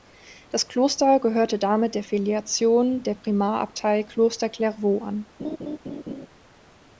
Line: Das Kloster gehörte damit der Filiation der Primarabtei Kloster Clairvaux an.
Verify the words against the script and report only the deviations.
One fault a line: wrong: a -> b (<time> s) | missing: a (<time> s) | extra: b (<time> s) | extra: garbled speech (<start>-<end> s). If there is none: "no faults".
no faults